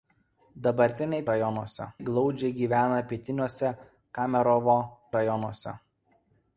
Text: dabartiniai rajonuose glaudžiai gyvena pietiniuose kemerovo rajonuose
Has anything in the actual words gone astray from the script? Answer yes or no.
no